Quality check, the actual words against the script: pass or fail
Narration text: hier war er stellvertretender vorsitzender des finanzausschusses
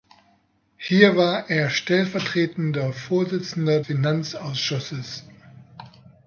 fail